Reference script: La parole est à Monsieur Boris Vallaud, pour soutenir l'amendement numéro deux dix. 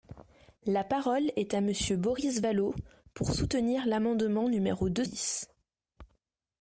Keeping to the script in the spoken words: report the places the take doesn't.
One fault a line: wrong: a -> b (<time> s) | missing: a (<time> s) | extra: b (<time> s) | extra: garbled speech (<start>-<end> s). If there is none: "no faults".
no faults